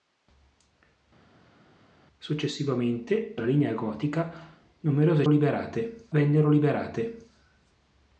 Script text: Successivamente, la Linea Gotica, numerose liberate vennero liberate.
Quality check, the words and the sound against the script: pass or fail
pass